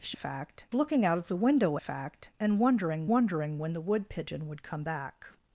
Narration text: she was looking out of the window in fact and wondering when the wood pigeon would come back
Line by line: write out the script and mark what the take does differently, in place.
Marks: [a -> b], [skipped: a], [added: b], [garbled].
she [was -> fact] looking out of the window [skipped: in] fact and wondering [added: wondering] when the wood pigeon would come back